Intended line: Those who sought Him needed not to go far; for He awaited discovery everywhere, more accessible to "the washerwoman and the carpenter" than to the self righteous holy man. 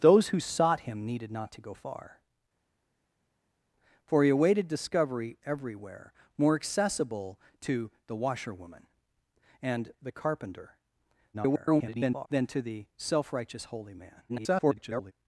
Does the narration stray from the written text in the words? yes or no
yes